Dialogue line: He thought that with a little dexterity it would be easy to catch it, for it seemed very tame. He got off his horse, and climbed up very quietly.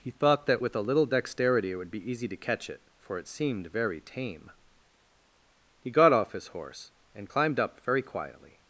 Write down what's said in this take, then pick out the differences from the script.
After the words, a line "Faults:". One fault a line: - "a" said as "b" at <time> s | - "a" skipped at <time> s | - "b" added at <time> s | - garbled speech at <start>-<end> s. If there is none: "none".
He thought that with a little dexterity it would be easy to catch it, for it seemed very tame. He got off his horse, and climbed up very quietly.
Faults:
none